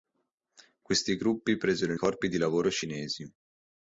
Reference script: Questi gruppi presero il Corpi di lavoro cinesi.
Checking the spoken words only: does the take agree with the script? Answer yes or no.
yes